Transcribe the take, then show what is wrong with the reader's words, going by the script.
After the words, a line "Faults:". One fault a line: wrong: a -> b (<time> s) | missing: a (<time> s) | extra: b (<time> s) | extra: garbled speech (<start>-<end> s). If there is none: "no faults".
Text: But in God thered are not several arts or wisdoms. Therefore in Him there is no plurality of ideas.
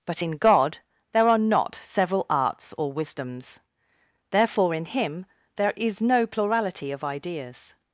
But in God there are not several arts or wisdoms. Therefore in Him there is no plurality of ideas.
Faults:
wrong: thered -> there (1.1 s)